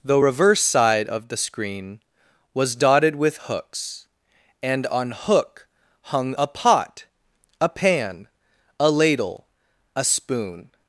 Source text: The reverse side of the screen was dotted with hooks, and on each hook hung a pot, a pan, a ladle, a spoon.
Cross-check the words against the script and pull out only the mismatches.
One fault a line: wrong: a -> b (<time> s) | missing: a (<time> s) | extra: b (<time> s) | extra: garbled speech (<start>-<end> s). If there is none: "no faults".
missing: each (5.1 s)